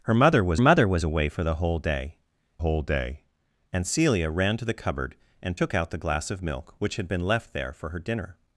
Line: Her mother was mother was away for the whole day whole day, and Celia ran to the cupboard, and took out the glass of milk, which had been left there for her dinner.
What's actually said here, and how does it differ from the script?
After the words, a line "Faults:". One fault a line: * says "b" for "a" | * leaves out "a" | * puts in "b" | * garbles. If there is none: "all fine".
Her mother was mother was away for the whole day whole day, and Celia ran to the cupboard, and took out the glass of milk, which had been left there for her dinner.
Faults:
all fine